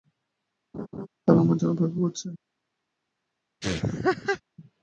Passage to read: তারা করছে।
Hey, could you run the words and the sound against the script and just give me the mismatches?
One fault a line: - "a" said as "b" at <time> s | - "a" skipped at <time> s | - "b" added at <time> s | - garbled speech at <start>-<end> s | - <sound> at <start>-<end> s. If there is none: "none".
- laugh at 0.7-1.1 s
- "আমার জন্য অপেক্ষা" added at 1.4 s
- laugh at 3.6-4.4 s